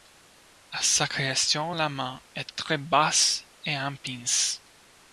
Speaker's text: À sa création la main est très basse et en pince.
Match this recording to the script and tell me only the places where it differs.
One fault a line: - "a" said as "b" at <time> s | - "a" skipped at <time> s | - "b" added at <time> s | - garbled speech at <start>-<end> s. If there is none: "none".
none